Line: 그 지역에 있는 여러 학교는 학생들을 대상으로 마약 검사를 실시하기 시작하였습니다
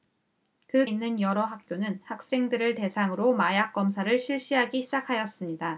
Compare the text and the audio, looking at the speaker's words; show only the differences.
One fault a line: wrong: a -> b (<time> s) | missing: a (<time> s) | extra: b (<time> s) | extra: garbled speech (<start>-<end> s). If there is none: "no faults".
missing: 지역에 (0.9 s)